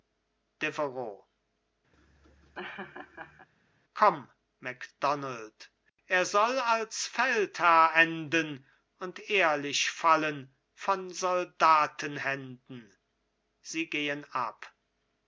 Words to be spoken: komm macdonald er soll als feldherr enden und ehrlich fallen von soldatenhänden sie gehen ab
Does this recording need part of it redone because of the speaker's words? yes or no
no